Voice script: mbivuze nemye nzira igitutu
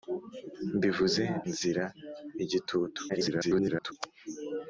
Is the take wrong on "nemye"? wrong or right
wrong